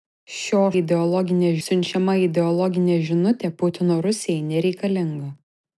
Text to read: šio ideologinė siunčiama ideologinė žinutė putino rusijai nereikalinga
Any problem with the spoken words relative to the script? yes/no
no